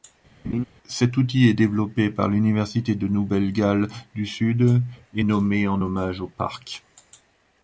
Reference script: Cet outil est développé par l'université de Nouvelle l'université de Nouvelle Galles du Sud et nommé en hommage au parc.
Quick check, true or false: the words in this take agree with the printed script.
false